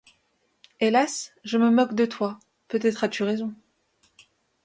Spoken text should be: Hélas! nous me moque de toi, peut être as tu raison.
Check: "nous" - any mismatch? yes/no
yes